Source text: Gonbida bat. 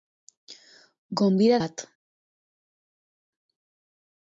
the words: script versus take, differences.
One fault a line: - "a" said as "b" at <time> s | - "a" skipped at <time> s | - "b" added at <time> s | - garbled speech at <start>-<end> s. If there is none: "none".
none